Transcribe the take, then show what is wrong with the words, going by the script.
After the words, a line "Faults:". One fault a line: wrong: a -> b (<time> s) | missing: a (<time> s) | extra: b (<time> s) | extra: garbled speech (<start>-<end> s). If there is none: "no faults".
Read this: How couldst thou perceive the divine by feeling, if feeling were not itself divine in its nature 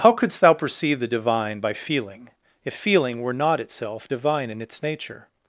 How couldst thou perceive the divine by feeling, if feeling were not itself divine in its nature
Faults:
no faults